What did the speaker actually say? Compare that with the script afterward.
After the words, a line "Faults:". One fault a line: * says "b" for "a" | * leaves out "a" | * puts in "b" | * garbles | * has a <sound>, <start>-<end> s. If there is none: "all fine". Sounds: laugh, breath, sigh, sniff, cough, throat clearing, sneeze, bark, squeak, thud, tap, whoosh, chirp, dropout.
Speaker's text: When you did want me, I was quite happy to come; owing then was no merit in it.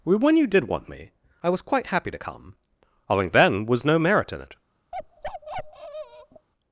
When you did want me, I was quite happy to come; owing then was no merit in it.
Faults:
* has a bark, 4.9-6.5 s